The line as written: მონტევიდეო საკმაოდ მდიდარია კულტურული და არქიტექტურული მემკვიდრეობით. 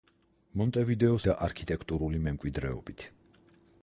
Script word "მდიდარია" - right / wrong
wrong